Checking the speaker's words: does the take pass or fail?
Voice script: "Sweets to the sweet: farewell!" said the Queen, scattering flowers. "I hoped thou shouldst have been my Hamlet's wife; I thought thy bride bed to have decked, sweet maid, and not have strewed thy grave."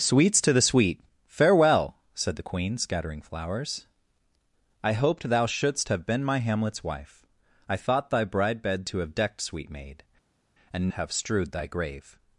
fail